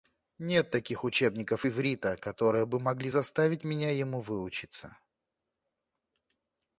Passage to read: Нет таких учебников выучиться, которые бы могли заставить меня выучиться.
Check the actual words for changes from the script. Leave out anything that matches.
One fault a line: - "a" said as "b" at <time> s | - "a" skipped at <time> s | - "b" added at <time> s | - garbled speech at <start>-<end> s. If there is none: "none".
- "выучиться" said as "иврита" at 1.7 s
- "ему" added at 3.9 s